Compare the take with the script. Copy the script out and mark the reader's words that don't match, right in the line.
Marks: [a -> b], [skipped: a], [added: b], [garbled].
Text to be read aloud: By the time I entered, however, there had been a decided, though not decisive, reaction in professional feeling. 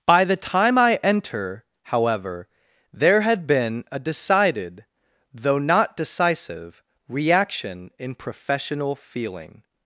By the time I [entered, -> enter] however, there had been a decided, though not decisive, reaction in professional feeling.